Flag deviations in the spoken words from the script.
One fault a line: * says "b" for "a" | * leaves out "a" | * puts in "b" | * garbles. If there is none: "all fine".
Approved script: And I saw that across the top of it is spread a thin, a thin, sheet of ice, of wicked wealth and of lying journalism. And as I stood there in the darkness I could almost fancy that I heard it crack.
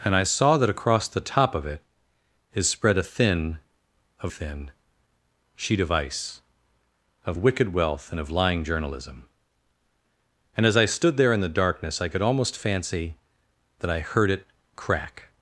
all fine